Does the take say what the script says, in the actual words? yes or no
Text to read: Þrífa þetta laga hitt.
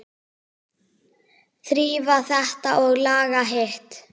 no